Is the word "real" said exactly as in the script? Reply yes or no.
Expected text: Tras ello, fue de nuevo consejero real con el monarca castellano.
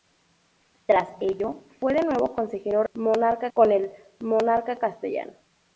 no